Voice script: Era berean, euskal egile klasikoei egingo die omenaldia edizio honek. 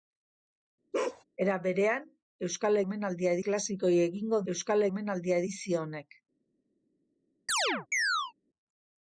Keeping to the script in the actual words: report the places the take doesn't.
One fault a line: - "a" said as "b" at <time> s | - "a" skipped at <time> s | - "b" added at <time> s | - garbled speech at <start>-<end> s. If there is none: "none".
- "egile" said as "omenaldia" at 2.8 s
- "die" said as "euskal" at 4.5 s